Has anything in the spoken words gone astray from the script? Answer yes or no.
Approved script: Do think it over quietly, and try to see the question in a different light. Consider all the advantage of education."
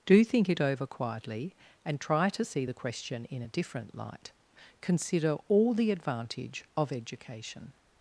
no